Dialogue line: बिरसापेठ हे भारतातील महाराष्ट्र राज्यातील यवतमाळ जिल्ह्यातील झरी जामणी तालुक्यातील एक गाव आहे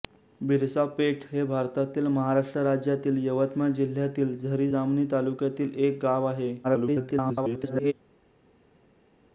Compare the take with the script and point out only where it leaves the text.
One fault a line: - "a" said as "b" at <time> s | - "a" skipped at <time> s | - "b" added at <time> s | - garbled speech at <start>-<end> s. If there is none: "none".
- garbled speech at 6.6-7.9 s